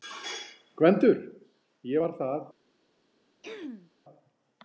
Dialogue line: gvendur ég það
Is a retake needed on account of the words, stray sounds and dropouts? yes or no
yes